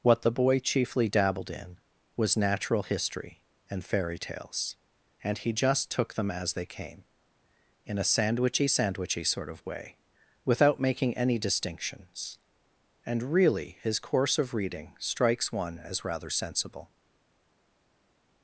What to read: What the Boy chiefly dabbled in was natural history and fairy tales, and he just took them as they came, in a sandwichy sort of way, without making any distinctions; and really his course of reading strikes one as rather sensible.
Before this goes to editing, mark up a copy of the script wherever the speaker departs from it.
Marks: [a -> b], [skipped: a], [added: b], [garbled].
What the Boy chiefly dabbled in was natural history and fairy tales, and he just took them as they came, in a sandwichy [added: sandwichy] sort of way, without making any distinctions; and really his course of reading strikes one as rather sensible.